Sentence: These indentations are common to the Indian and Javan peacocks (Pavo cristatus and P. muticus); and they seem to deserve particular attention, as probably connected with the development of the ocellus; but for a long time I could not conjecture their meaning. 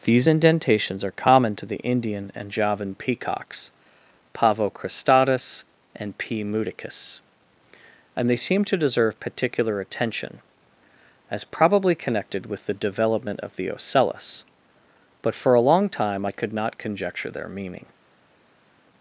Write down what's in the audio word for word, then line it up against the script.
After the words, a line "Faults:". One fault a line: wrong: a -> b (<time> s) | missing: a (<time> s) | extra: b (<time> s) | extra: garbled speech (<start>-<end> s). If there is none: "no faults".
These indentations are common to the Indian and Javan peacocks (Pavo cristatus and P. muticus); and they seem to deserve particular attention, as probably connected with the development of the ocellus; but for a long time I could not conjecture their meaning.
Faults:
no faults